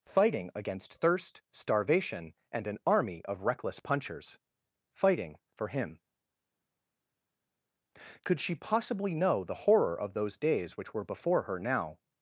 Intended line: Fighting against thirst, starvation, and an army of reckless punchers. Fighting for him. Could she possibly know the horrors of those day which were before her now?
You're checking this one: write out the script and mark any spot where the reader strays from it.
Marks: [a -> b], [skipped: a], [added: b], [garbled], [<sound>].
Fighting against thirst, starvation, and an army of reckless punchers. Fighting for him. Could she possibly know the [horrors -> horror] of those [day -> days] which were before her now?